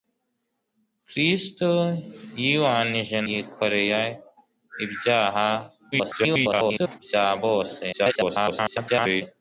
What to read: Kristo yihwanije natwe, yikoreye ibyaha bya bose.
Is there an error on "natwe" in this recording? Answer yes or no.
yes